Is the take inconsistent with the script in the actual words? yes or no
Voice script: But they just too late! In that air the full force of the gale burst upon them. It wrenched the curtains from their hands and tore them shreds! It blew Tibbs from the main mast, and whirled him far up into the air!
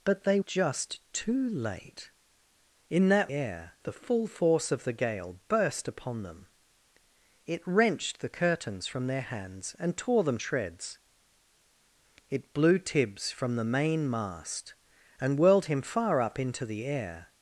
no